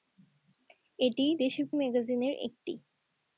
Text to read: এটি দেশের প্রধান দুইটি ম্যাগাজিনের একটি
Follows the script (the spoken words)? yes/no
no